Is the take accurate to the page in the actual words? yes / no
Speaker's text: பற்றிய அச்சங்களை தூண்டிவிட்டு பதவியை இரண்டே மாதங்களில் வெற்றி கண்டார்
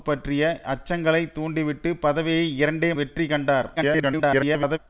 no